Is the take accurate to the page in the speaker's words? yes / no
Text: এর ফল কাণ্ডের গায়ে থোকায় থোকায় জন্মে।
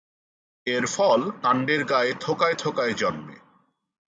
yes